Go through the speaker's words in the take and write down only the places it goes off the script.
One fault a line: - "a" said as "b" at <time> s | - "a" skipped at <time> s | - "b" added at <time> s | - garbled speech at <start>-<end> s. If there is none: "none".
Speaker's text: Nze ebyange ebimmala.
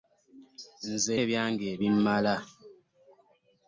none